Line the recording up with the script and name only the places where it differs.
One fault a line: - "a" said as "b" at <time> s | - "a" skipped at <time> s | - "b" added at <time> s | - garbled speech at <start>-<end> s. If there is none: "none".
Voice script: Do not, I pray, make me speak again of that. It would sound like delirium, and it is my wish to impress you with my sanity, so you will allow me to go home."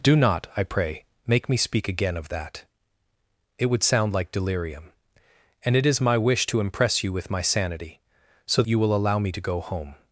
none